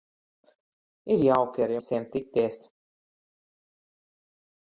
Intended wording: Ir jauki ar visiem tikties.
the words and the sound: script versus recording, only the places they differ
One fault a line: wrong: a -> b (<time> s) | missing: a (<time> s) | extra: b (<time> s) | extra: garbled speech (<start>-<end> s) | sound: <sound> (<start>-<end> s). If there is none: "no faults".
no faults